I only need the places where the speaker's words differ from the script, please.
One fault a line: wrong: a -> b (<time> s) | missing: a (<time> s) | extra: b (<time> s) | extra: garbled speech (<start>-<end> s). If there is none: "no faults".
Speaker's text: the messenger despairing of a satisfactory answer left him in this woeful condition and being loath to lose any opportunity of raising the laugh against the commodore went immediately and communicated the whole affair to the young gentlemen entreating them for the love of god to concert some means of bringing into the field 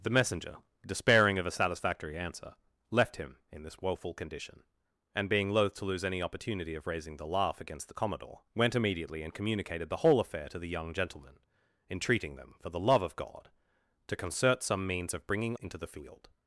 no faults